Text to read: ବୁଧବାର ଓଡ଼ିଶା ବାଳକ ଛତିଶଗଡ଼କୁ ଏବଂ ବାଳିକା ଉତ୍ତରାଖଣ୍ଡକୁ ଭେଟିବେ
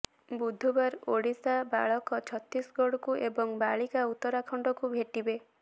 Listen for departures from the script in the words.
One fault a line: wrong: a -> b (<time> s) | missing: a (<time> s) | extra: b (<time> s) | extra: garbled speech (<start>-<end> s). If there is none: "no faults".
no faults